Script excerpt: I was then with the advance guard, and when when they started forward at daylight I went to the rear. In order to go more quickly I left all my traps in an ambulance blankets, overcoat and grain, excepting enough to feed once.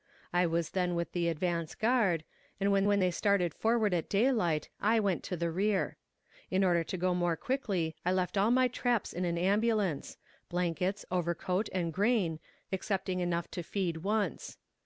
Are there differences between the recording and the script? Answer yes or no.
no